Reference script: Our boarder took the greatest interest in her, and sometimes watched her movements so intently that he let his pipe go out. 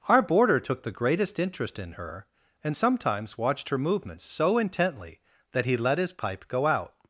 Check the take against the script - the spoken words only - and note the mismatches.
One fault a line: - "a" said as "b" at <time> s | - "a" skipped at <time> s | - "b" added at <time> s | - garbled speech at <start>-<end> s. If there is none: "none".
none